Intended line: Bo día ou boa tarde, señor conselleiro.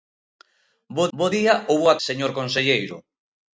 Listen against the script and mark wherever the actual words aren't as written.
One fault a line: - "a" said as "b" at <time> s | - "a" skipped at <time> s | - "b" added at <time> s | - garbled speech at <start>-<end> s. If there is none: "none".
- "bo" added at 1.2 s
- "tarde" skipped at 2.0 s